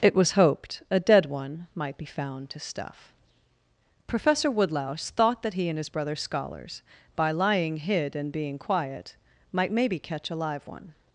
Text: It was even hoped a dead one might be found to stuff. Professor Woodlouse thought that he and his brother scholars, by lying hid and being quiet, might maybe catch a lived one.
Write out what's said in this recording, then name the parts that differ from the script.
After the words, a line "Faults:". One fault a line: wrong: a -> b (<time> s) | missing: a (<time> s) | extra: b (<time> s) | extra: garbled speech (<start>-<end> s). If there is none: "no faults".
It was hoped a dead one might be found to stuff. Professor Woodlouse thought that he and his brother scholars, by lying hid and being quiet, might maybe catch a live one.
Faults:
missing: even (0.3 s)
wrong: lived -> live (10.4 s)